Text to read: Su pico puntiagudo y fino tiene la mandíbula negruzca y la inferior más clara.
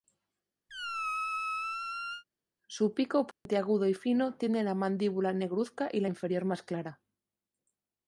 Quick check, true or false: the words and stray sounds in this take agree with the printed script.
false